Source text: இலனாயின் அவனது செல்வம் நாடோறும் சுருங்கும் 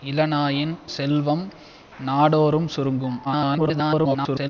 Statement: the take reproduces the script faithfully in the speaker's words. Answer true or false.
false